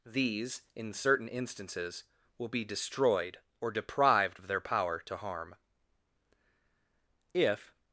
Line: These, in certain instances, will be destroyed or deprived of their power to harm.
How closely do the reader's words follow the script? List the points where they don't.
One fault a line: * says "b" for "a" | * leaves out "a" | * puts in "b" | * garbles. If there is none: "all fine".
* puts in "If"